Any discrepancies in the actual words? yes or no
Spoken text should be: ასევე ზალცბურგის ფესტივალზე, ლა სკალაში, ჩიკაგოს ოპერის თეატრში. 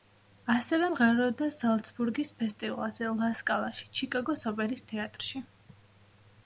yes